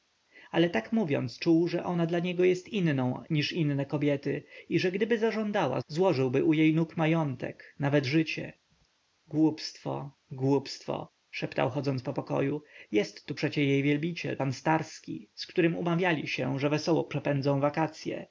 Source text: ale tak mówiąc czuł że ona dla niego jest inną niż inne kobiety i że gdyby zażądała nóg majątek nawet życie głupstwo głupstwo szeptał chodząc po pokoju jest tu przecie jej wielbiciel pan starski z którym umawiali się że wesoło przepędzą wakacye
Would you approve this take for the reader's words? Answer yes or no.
no